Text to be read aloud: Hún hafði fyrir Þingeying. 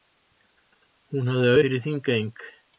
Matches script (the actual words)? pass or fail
pass